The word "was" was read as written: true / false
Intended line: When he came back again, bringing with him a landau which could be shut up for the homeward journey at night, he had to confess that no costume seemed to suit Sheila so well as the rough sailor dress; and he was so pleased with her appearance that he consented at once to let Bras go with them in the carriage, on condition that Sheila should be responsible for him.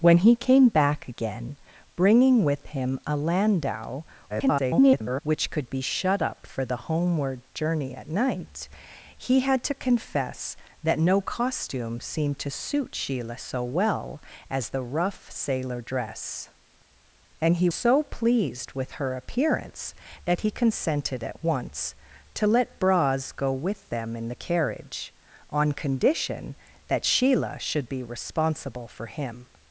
false